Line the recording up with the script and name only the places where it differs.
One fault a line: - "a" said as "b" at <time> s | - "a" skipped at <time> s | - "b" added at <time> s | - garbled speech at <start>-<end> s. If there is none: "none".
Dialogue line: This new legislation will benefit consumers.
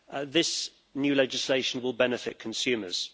none